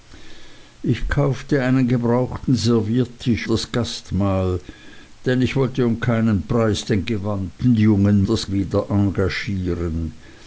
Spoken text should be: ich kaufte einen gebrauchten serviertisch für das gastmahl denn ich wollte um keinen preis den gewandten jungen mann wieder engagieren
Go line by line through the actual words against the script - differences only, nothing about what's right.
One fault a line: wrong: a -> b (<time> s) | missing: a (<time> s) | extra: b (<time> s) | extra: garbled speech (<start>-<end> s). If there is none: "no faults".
missing: für (3.5 s)
wrong: mann -> das (8.2 s)